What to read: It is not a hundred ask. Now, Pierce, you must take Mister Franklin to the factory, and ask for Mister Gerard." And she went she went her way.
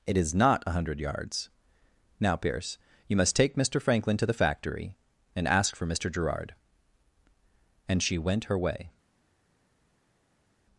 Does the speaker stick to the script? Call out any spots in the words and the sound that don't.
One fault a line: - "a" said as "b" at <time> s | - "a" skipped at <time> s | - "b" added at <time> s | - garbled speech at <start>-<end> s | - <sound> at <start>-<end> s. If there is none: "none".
- "ask" said as "yards" at 1.0 s
- "she went" skipped at 8.4 s